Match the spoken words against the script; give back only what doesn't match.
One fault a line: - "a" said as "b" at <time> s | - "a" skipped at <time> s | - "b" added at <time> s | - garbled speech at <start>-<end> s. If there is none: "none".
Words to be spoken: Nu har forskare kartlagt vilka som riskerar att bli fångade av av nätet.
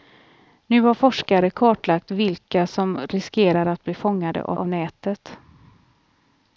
none